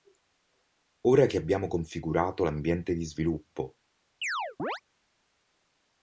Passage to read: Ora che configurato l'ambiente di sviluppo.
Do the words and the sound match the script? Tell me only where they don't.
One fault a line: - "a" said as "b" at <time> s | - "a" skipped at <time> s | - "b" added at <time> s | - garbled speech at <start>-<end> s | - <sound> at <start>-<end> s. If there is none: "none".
- "abbiamo" added at 1.4 s
- chirp at 4.2-4.8 s